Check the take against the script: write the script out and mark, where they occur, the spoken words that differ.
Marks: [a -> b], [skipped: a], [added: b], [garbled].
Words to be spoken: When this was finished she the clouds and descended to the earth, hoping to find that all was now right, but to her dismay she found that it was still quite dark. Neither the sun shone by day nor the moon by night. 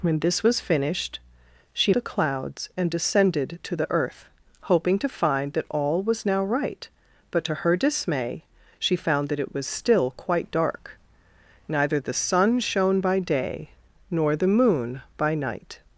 When this was finished she the clouds and descended to the earth, hoping to find that all was now right, but to her dismay she found that it was still quite dark. Neither the sun shone by day nor the moon by night.